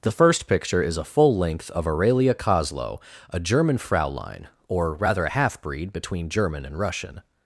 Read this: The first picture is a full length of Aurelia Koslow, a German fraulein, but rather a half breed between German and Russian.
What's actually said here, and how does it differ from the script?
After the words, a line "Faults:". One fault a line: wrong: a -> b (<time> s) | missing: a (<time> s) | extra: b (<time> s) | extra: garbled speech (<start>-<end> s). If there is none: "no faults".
The first picture is a full length of Aurelia Koslow, a German fraulein, or rather a half breed between German and Russian.
Faults:
wrong: but -> or (4.7 s)